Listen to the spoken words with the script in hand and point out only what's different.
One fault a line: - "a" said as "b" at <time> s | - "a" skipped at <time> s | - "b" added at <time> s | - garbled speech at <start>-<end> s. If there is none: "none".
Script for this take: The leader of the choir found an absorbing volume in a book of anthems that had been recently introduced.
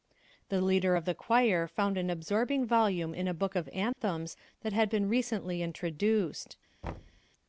none